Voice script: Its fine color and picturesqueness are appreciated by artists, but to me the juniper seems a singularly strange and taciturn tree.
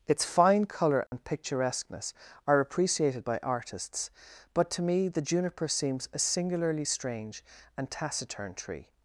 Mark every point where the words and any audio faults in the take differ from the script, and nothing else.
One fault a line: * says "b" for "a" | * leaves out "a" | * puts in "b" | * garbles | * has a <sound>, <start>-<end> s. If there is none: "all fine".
* has a dropout, 1.1-1.1 s